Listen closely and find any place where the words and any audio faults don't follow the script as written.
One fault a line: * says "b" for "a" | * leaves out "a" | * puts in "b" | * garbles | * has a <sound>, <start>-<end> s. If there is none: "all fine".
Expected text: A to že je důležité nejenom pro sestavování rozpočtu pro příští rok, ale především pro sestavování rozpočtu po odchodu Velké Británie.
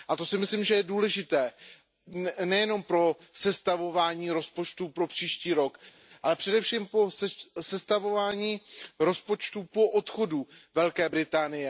* puts in "si myslím"